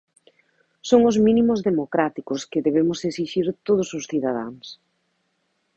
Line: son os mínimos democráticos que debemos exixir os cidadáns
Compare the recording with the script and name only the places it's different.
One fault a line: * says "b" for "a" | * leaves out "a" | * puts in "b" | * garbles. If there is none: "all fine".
* puts in "todos"